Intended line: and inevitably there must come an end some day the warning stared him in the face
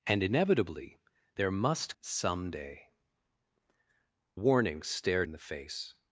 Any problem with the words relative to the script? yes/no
yes